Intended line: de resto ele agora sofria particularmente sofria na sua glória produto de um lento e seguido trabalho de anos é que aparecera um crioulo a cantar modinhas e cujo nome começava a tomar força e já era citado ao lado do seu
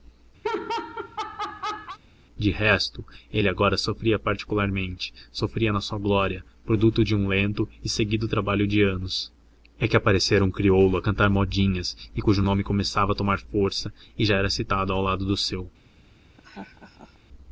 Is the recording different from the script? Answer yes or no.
no